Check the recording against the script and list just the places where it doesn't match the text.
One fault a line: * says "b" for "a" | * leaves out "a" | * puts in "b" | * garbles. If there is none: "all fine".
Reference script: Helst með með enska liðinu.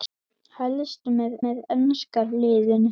all fine